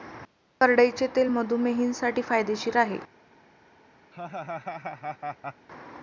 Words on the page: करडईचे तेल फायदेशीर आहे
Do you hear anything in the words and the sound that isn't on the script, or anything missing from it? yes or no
yes